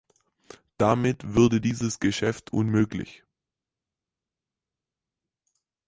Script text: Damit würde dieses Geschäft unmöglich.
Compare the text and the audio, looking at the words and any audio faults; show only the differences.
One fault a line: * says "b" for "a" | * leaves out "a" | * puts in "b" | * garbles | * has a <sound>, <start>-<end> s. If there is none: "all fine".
all fine